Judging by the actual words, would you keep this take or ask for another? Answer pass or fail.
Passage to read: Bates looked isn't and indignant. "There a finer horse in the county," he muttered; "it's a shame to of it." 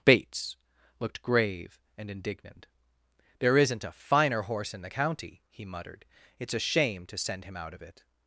fail